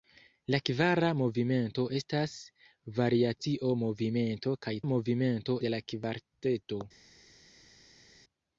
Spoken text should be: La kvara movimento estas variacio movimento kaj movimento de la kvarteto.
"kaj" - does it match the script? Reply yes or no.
yes